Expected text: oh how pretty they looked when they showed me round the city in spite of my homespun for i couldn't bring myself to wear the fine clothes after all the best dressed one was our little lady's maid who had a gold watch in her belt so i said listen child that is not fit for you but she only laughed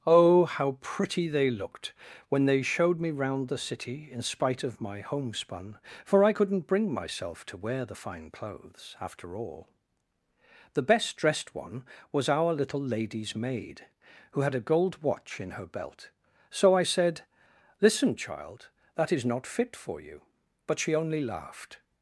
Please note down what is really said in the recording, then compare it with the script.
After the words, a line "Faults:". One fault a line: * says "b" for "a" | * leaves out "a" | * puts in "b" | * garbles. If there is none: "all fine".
oh how pretty they looked when they showed me round the city in spite of my homespun for i couldn't bring myself to wear the fine clothes after all the best dressed one was our little lady's maid who had a gold watch in her belt so i said listen child that is not fit for you but she only laughed
Faults:
all fine